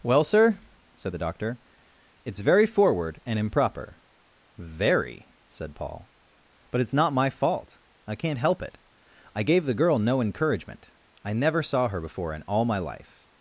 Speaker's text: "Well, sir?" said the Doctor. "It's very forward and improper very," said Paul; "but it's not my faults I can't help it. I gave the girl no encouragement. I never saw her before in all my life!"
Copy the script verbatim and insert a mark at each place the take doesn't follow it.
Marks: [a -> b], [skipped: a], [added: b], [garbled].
"Well, sir?" said the Doctor. "It's very forward and improper very," said Paul; "but it's not my [faults -> fault] I can't help it. I gave the girl no encouragement. I never saw her before in all my life!"